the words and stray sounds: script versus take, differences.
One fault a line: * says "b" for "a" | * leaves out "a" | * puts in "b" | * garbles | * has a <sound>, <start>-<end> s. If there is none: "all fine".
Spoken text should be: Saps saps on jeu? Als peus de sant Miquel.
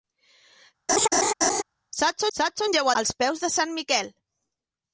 * has a laugh, 0.9-1.6 s